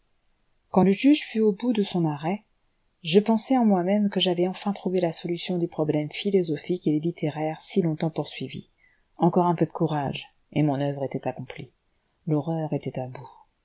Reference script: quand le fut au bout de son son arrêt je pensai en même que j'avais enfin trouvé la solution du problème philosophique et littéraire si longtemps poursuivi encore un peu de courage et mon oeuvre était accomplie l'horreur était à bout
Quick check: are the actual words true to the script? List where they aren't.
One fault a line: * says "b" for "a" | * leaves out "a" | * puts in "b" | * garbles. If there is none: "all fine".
* puts in "juge"
* leaves out "son"
* puts in "moi"